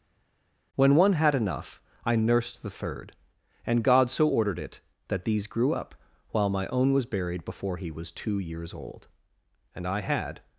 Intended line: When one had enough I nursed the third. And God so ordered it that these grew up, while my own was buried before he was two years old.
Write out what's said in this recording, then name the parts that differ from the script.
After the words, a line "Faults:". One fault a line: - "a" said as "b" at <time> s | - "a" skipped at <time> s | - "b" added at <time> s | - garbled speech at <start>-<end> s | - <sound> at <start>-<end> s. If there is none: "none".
When one had enough I nursed the third. And God so ordered it that these grew up, while my own was buried before he was two years old. And I had
Faults:
- "And I had" added at 9.7 s